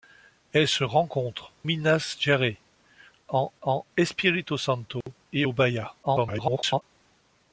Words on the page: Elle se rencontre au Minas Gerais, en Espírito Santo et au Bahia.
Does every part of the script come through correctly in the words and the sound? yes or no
no